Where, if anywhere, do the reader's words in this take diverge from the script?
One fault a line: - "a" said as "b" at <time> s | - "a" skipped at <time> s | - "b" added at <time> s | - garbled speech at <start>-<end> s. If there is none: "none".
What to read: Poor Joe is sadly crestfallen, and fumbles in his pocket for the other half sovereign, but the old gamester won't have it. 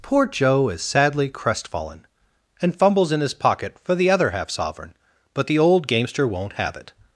none